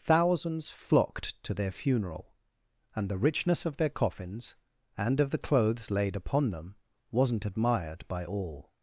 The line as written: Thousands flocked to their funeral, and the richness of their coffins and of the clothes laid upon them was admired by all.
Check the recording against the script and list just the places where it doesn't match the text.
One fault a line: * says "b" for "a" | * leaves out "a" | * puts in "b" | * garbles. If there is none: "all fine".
* says "wasn't" for "was"